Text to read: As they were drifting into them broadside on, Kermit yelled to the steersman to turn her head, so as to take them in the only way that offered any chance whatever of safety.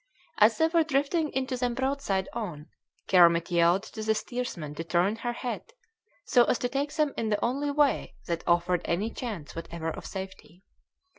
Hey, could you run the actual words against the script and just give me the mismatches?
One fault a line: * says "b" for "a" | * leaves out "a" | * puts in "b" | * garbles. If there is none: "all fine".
all fine